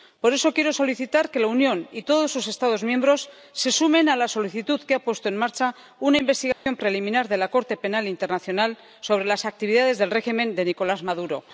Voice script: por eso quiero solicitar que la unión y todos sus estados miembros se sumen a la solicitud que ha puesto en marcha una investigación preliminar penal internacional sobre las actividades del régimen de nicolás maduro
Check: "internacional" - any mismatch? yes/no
no